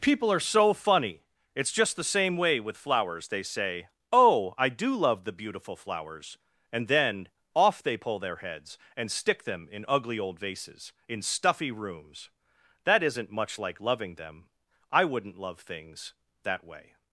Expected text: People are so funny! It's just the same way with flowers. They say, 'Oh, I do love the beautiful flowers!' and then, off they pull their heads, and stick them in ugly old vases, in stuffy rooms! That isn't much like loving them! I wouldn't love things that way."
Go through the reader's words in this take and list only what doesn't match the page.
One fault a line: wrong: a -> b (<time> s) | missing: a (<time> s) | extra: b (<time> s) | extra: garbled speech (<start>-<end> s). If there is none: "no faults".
no faults